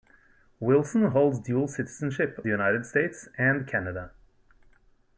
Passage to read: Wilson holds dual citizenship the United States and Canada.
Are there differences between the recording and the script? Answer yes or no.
no